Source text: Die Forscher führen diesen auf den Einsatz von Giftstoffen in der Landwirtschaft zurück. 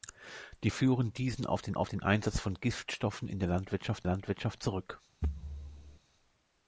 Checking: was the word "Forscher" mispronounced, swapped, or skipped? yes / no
yes